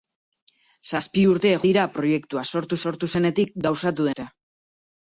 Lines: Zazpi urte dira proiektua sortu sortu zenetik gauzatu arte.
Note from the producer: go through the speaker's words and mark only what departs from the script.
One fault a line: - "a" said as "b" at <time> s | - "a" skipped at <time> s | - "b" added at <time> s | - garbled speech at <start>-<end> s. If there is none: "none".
none